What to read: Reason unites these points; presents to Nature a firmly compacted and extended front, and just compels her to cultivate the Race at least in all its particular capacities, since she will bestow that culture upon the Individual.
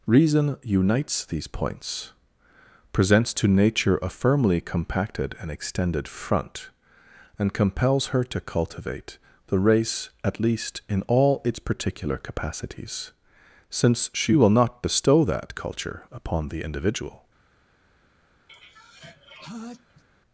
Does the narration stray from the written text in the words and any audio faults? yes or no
yes